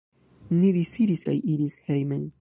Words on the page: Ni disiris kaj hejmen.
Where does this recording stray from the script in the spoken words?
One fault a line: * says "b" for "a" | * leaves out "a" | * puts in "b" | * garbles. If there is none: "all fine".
* puts in "iris"